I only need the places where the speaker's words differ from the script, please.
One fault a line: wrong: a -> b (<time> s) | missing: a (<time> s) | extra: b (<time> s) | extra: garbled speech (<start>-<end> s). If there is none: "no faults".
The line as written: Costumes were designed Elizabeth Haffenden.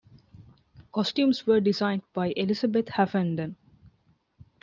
extra: by (2.1 s)